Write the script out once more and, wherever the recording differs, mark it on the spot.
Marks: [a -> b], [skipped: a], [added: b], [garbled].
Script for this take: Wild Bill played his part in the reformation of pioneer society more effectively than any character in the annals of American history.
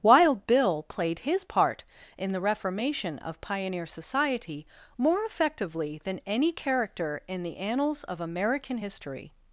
Wild Bill played his part in the reformation of pioneer society more effectively than any character in the annals of American history.